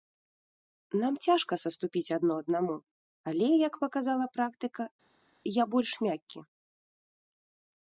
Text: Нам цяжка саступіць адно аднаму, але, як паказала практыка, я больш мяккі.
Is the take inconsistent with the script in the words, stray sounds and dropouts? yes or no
no